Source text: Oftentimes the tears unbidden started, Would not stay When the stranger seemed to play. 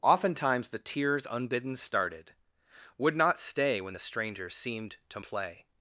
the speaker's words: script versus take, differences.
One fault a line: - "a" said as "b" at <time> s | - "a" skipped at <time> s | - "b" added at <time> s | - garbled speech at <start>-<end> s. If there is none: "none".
none